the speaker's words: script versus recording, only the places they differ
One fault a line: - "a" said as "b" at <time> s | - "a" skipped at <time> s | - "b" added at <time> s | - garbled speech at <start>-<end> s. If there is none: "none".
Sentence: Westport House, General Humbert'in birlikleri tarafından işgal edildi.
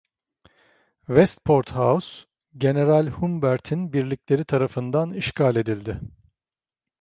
none